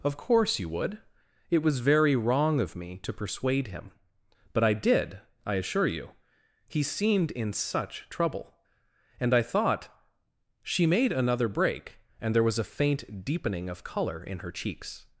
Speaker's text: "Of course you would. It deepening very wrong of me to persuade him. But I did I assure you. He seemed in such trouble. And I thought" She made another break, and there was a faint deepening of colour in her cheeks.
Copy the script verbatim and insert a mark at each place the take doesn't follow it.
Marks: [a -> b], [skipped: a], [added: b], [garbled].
"Of course you would. It [deepening -> was] very wrong of me to persuade him. But I did I assure you. He seemed in such trouble. And I thought" She made another break, and there was a faint deepening of colour in her cheeks.